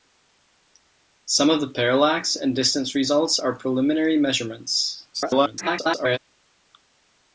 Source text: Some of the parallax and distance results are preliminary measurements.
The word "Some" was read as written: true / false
true